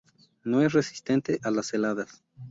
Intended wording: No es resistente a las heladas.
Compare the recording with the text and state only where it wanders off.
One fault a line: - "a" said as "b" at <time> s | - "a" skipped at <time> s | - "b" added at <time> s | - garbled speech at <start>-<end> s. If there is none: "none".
none